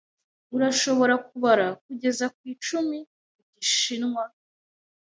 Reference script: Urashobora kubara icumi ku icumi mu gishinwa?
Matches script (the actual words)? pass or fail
fail